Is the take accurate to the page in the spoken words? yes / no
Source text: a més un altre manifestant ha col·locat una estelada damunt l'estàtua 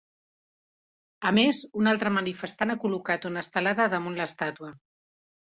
yes